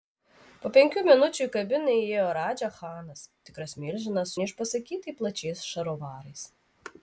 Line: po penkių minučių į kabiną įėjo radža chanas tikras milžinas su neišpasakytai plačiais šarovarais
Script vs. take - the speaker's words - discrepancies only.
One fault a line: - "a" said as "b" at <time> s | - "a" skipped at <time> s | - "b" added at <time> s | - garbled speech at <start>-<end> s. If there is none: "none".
- "su" skipped at 4.4 s